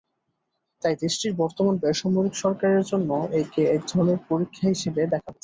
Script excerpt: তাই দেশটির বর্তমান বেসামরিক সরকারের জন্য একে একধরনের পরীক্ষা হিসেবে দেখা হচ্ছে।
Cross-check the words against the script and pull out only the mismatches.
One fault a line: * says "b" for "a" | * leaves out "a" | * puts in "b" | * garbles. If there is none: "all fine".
all fine